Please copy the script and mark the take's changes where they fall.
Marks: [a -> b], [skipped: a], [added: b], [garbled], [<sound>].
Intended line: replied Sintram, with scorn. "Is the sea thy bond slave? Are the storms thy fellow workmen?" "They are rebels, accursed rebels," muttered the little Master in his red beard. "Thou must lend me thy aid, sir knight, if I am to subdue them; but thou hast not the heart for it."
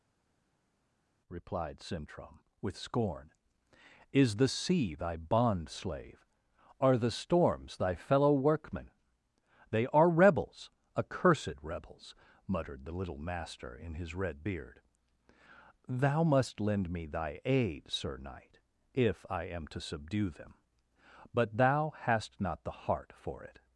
replied Sintram, with scorn. "Is the sea thy bond slave? Are the storms thy fellow workmen?" "They are rebels, accursed rebels," muttered the little Master in his red beard. "Thou must lend me thy aid, sir knight, if I am to subdue them; but thou hast not the heart for it."